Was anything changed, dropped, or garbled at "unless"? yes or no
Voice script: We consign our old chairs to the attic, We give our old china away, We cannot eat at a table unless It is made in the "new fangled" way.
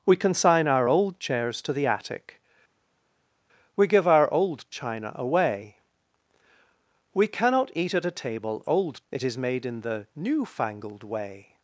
yes